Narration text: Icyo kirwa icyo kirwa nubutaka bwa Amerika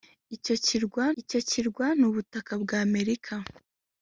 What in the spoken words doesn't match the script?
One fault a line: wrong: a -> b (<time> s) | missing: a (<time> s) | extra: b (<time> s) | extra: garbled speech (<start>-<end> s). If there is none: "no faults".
no faults